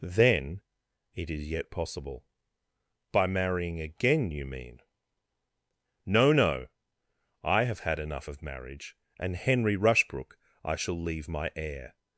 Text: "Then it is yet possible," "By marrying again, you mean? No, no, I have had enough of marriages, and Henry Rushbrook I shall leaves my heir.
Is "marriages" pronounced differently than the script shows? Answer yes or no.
yes